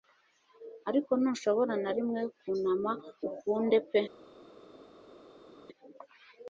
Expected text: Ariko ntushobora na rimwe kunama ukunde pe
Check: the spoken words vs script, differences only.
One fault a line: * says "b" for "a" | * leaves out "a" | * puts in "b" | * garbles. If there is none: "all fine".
all fine